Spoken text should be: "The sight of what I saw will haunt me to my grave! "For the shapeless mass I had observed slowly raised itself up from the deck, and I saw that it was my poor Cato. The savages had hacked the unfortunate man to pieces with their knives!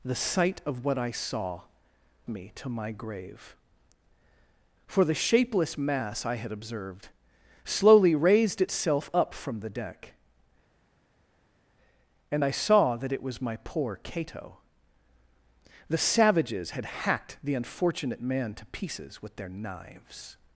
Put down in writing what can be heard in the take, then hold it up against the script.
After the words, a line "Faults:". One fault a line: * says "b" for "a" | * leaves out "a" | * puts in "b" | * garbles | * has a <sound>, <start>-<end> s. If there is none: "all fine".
"The sight of what I saw me to my grave! "For the shapeless mass I had observed slowly raised itself up from the deck, and I saw that it was my poor Cato. The savages had hacked the unfortunate man to pieces with their knives!
Faults:
* leaves out "will haunt"